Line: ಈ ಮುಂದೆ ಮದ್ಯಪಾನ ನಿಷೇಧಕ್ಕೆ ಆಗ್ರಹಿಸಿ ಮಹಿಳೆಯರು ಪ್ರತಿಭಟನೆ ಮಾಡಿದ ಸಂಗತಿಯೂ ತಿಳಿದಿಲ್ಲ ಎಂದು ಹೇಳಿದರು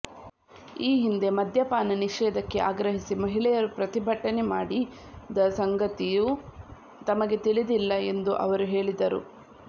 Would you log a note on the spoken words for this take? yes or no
yes